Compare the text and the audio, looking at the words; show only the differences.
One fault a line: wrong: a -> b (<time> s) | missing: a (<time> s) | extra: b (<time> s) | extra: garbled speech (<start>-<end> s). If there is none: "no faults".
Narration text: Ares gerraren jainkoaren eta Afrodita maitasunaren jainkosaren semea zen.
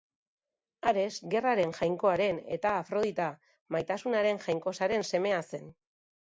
no faults